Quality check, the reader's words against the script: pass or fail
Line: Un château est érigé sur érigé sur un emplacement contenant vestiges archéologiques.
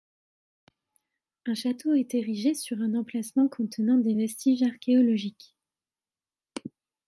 fail